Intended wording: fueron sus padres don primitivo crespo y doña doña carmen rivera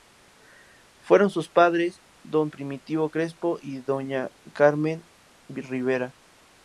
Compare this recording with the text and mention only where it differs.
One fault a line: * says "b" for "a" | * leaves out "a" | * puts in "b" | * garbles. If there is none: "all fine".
* leaves out "doña"